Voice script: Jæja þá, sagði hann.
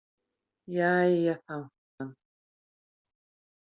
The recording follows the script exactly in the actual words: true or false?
false